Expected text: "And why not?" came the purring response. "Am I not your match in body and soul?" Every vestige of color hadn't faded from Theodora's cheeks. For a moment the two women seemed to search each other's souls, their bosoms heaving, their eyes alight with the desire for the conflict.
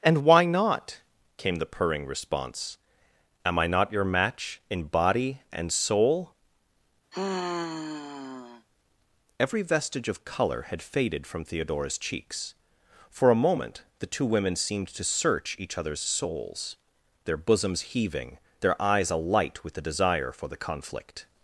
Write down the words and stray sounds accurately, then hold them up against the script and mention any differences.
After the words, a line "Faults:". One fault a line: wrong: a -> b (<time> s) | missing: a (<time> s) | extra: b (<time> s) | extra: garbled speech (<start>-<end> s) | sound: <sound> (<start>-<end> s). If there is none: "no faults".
"And why not?" came the purring response. "Am I not your match in body and soul?" Every vestige of color had faded from Theodora's cheeks. For a moment the two women seemed to search each other's souls, their bosoms heaving, their eyes alight with the desire for the conflict.
Faults:
sound: sigh (7.1-8.7 s)
wrong: hadn't -> had (10.7 s)